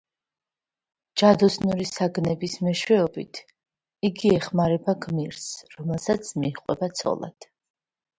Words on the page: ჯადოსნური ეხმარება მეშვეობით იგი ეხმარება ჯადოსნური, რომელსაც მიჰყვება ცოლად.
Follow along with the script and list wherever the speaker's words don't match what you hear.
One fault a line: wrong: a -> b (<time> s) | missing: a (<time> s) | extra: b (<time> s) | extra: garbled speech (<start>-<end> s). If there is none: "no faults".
wrong: ეხმარება -> საგნების (1.9 s)
wrong: ჯადოსნური -> გმირს (5.1 s)